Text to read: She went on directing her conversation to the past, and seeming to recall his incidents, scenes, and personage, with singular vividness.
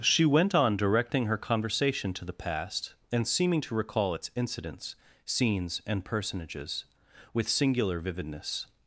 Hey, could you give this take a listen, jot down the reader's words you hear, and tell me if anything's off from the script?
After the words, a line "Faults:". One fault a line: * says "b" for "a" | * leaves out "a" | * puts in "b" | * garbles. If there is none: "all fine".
She went on directing her conversation to the past, and seeming to recall its incidents, scenes, and personages, with singular vividness.
Faults:
* says "its" for "his"
* says "personages" for "personage"